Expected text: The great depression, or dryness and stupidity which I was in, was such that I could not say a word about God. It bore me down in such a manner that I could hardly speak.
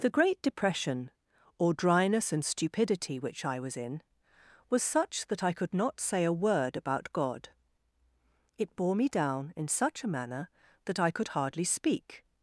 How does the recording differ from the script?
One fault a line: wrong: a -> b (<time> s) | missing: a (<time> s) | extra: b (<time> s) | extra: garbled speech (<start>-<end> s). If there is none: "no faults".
no faults